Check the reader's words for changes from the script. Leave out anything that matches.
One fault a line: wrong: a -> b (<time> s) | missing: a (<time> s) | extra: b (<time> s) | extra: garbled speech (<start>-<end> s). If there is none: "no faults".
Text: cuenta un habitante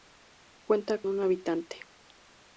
no faults